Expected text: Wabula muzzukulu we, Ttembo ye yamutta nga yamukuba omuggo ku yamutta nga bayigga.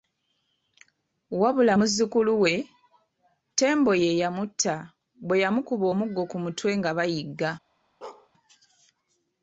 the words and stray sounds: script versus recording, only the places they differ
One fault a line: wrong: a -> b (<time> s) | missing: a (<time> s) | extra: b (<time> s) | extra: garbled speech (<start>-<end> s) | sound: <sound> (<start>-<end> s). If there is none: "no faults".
wrong: nga -> bwe (5.3 s)
wrong: yamutta -> mutwe (6.4 s)
sound: bark (8.0-8.3 s)